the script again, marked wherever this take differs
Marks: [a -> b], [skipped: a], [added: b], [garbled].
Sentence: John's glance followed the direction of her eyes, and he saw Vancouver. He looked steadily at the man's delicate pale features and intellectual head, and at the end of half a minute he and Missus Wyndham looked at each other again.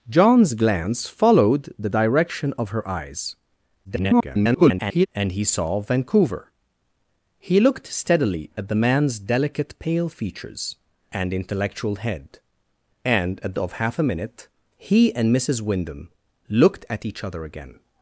John's glance followed the direction of her eyes, [garbled] and he saw Vancouver. He looked steadily at the man's delicate pale features and intellectual head, and at [skipped: the end] of half a minute he and Missus Wyndham looked at each other again.